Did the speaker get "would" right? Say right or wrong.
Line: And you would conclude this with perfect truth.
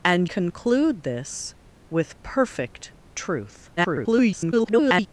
wrong